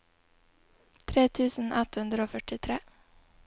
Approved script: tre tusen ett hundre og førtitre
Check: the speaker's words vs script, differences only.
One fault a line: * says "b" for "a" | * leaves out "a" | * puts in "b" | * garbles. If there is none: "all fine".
all fine